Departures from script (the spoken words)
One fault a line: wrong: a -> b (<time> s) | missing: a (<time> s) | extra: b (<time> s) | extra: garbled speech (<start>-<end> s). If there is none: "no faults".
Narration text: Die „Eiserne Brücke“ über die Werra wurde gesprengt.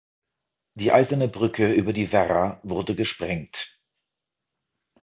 no faults